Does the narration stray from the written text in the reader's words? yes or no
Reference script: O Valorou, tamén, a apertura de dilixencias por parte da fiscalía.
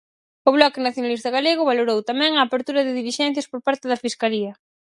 yes